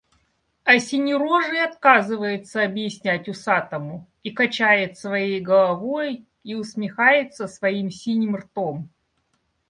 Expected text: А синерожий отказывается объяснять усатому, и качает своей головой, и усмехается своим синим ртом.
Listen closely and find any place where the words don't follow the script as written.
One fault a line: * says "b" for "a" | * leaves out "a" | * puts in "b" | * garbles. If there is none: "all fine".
all fine